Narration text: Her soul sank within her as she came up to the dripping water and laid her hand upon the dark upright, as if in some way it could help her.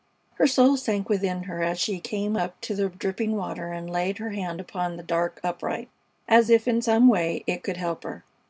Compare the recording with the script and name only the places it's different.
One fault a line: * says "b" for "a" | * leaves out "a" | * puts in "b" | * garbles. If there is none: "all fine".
all fine